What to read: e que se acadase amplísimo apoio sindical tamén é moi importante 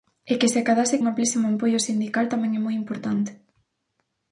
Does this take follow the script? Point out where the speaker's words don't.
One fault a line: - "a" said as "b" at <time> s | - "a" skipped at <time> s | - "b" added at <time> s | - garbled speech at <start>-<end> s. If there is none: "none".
none